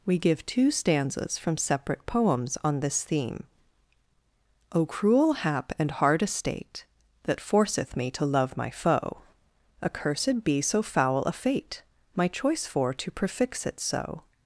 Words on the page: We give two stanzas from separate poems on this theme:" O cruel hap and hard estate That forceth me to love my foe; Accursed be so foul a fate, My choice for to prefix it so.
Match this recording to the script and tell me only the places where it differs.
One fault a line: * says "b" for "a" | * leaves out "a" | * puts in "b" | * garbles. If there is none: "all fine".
all fine